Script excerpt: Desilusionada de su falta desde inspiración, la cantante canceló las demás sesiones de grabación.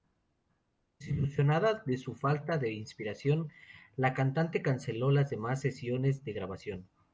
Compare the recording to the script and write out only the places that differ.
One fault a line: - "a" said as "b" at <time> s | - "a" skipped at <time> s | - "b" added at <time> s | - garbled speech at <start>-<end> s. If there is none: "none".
- "desde" said as "de" at 2.6 s